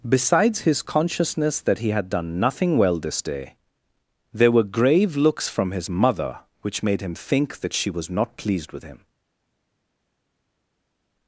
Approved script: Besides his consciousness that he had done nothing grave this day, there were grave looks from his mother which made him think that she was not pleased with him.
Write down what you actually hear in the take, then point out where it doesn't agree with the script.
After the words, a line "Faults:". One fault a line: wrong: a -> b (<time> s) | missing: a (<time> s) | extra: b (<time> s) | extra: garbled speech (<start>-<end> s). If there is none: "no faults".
Besides his consciousness that he had done nothing well this day, there were grave looks from his mother which made him think that she was not pleased with him.
Faults:
wrong: grave -> well (2.8 s)